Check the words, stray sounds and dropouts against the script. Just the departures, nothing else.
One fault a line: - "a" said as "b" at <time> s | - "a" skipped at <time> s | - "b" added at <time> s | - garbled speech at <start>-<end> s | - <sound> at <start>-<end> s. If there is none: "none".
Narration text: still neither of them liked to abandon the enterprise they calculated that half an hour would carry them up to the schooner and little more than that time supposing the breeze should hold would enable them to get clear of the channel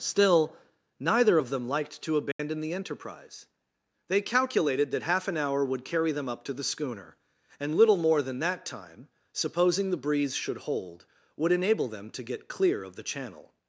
- dropout at 2.3-2.4 s